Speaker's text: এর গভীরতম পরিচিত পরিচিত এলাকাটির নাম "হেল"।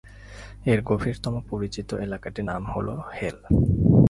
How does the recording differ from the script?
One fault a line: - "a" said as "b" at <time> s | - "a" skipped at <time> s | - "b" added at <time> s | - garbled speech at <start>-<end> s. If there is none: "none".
- "পরিচিত" skipped at 1.9 s
- "হল" added at 2.6 s